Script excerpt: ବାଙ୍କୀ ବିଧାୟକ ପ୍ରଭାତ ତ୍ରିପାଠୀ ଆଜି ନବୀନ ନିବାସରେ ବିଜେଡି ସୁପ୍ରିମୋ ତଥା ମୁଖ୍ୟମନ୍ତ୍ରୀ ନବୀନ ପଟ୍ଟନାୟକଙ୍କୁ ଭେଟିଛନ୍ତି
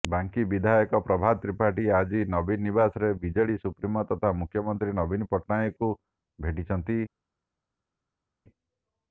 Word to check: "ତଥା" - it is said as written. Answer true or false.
true